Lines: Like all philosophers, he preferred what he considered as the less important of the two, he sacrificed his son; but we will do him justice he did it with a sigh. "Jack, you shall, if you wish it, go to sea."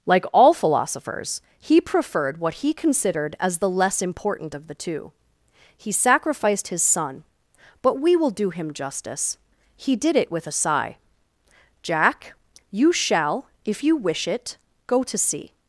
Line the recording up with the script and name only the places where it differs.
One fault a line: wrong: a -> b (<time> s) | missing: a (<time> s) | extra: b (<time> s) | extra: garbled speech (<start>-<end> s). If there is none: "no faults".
no faults